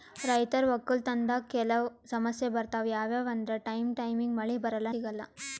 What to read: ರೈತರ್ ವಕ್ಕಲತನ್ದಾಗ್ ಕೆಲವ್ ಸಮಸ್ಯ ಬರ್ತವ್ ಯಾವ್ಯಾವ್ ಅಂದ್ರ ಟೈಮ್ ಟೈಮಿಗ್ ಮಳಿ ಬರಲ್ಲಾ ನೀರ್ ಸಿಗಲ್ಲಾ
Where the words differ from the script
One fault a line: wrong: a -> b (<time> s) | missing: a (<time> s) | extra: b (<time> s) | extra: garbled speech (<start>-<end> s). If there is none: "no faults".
missing: ನೀರ್ (4.9 s)